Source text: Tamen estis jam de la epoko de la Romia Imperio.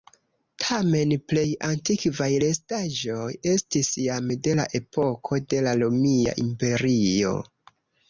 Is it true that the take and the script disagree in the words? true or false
true